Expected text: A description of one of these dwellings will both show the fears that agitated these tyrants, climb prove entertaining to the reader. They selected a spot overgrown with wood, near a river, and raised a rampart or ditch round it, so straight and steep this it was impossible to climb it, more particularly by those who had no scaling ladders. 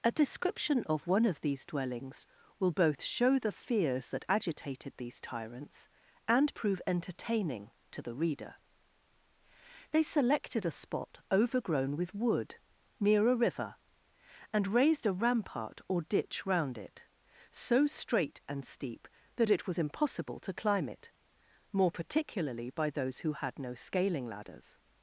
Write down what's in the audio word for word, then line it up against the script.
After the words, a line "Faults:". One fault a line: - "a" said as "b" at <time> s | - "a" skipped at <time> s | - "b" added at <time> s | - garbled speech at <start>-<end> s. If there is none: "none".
A description of one of these dwellings will both show the fears that agitated these tyrants, and prove entertaining to the reader. They selected a spot overgrown with wood, near a river, and raised a rampart or ditch round it, so straight and steep that it was impossible to climb it, more particularly by those who had no scaling ladders.
Faults:
- "climb" said as "and" at 6.3 s
- "this" said as "that" at 19.3 s